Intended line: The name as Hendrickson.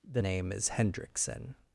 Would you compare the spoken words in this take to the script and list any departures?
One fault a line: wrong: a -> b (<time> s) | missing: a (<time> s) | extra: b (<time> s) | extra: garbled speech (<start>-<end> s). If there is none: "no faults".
no faults